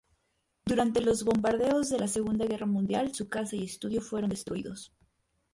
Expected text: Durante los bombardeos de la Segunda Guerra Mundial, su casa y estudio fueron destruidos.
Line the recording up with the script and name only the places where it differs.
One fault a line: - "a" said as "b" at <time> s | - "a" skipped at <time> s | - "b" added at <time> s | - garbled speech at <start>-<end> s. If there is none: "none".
none